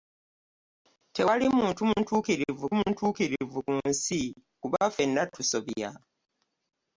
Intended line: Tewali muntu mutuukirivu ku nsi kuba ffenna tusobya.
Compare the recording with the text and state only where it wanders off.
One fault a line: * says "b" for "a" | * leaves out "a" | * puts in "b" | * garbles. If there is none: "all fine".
* puts in "mutuukirivu"